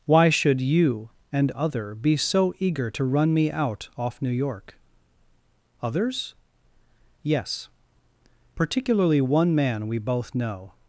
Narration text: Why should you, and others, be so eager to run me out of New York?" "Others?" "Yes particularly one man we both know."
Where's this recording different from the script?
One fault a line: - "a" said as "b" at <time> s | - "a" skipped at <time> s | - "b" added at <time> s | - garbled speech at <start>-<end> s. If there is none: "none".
- "others" said as "other" at 1.5 s
- "of" said as "off" at 4.0 s